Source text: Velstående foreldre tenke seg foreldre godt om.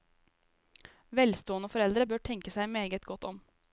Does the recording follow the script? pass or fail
fail